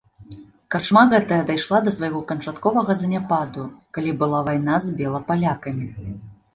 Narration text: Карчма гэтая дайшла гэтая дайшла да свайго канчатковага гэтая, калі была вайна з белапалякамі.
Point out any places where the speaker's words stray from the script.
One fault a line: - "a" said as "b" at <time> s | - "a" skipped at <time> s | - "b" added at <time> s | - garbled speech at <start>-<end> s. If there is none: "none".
- "гэтая дайшла" skipped at 1.8 s
- "гэтая" said as "заняпаду" at 3.0 s